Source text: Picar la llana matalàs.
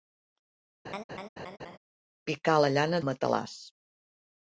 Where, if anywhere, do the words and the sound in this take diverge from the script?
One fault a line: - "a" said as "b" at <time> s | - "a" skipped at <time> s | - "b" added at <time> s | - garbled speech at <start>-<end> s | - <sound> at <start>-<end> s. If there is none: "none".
- laugh at 0.8-1.8 s